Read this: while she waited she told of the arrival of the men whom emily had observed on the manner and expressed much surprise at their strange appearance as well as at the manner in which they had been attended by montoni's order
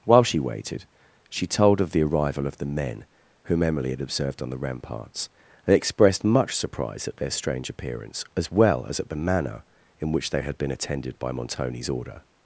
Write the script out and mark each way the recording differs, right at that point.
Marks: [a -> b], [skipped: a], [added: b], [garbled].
while she waited she told of the arrival of the men whom emily had observed on the [manner -> ramparts] and expressed much surprise at their strange appearance as well as at the manner in which they had been attended by montoni's order